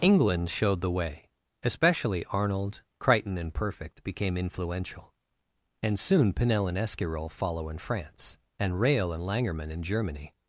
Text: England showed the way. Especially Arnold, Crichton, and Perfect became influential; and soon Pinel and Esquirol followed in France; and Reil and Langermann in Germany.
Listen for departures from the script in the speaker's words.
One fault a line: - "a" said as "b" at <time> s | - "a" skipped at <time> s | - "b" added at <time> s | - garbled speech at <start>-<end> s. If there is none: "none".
- "followed" said as "follow" at 7.3 s